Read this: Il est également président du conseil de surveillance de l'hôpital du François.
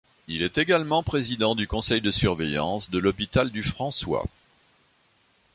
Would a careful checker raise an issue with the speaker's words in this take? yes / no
no